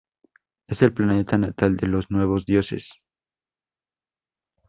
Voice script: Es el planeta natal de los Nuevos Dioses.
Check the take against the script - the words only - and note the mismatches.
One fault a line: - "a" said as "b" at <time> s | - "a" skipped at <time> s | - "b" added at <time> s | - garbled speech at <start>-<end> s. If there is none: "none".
none